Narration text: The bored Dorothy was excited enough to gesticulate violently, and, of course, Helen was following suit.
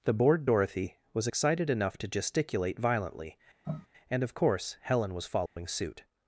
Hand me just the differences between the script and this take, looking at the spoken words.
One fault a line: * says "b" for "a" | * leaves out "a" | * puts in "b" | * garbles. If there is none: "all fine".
all fine